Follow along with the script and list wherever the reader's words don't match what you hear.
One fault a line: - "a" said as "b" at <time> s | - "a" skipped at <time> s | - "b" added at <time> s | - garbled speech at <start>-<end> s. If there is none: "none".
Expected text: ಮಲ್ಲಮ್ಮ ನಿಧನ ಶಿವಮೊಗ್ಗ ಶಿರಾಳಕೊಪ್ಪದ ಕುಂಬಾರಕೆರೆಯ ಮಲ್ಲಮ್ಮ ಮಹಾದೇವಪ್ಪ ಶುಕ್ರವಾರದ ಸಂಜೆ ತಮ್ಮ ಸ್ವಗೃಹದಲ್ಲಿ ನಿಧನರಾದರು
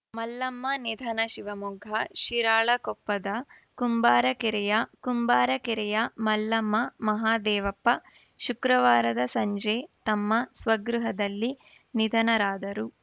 - "ಕುಂಬಾರಕೆರೆಯ" added at 5.0 s